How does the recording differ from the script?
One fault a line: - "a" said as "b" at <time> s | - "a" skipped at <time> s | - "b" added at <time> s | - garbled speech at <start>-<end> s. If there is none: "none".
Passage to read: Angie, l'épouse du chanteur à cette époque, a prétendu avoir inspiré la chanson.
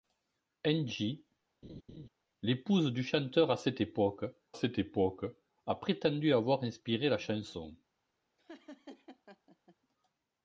- "cette époque" added at 4.5 s